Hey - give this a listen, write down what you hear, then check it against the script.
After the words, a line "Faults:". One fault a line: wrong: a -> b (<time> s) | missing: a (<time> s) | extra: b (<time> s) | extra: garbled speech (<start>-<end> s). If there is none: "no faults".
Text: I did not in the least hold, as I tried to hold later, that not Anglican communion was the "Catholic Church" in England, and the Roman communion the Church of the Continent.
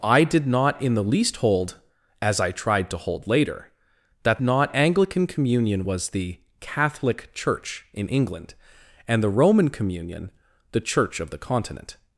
I did not in the least hold, as I tried to hold later, that not Anglican communion was the "Catholic Church" in England, and the Roman communion the Church of the Continent.
Faults:
no faults